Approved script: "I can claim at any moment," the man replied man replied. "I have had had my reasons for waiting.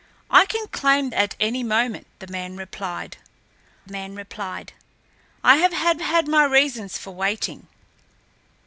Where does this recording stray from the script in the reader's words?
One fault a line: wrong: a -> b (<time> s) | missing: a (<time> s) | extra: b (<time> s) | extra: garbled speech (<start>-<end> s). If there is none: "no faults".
no faults